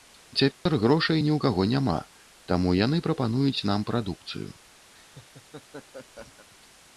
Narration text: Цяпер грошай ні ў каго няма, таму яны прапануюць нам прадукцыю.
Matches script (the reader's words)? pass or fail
pass